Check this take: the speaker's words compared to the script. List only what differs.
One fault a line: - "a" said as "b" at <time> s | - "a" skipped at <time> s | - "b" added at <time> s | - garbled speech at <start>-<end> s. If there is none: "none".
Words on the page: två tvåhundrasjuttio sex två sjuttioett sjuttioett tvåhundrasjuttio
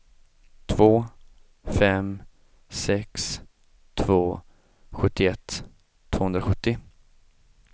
- "tvåhundrasjuttio" said as "fem" at 1.6 s
- "sjuttioett" skipped at 5.6 s